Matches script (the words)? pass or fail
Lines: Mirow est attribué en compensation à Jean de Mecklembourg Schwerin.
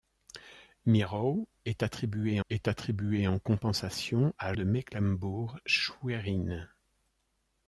fail